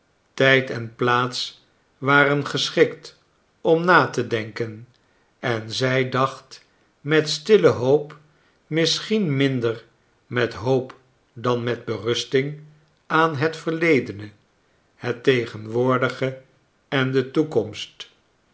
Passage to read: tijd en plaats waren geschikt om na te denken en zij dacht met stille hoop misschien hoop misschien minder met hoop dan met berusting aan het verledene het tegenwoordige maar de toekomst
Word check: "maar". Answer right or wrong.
wrong